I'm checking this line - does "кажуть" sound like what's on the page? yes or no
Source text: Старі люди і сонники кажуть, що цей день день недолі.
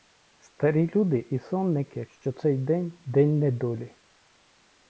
no